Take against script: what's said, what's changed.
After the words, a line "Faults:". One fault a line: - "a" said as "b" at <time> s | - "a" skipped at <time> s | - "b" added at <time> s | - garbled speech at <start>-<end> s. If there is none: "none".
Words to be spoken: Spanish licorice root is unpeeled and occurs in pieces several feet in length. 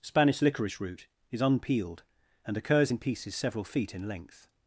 Spanish licorice root is unpeeled and occurs in pieces several feet in length.
Faults:
none